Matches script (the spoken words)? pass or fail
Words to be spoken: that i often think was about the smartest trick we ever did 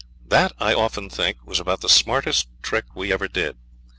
pass